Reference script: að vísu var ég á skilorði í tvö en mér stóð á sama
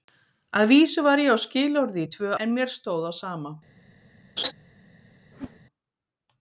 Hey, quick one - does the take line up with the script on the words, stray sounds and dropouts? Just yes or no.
no